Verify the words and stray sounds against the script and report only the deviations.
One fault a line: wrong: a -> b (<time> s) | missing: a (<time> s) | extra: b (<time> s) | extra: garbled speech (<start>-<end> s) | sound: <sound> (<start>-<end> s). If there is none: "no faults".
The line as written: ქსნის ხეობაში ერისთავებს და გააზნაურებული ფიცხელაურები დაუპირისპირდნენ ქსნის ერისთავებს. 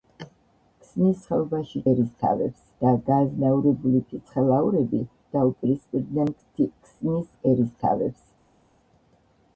no faults